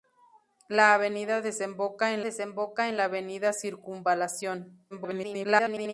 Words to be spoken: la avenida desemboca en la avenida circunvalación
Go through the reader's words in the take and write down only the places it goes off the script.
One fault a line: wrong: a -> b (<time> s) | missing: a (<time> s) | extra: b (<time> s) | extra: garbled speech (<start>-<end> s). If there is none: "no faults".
extra: desemboca en (2.2 s)
extra: garbled speech (4.9-5.9 s)